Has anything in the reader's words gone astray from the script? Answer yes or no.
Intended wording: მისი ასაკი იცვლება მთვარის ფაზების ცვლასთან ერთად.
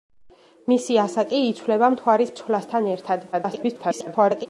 yes